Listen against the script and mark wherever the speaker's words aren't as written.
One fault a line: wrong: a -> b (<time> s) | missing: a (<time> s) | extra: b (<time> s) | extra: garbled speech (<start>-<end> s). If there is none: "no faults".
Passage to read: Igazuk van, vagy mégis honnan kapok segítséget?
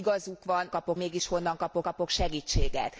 wrong: vagy -> kapok (0.7 s)
extra: kapok (1.8 s)